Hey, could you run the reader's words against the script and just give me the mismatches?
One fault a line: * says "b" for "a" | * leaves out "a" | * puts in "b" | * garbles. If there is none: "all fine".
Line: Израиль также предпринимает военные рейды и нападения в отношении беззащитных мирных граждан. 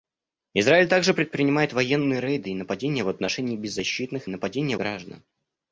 * says "нападения" for "мирных"